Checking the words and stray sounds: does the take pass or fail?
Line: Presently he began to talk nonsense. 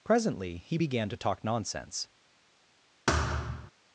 fail